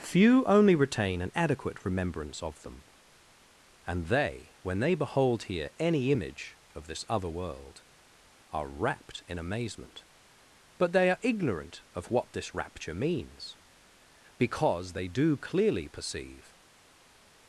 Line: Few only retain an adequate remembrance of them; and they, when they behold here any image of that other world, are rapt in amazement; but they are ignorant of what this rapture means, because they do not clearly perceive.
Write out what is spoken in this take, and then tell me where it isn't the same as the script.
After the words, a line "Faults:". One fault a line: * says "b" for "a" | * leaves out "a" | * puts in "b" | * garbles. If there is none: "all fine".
Few only retain an adequate remembrance of them; and they, when they behold here any image of this other world, are rapt in amazement; but they are ignorant of what this rapture means, because they do clearly perceive.
Faults:
* says "this" for "that"
* leaves out "not"